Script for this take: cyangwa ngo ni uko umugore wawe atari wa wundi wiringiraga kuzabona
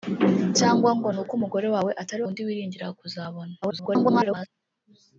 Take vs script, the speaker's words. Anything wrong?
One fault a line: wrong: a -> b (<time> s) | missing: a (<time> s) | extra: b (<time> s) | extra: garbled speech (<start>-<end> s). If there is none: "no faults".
missing: wa (2.2 s)
extra: garbled speech (3.6-4.5 s)